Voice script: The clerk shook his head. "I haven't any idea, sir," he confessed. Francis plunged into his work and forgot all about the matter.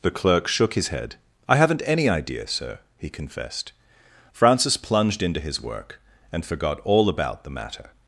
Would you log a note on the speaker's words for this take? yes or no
no